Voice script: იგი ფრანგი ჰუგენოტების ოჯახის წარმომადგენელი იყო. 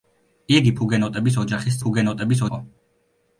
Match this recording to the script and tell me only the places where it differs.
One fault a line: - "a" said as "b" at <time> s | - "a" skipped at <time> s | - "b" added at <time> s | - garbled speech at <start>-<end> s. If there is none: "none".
- "ფრანგი" skipped at 0.7 s
- "წარმომადგენელი" said as "ჰუგენოტების" at 1.8 s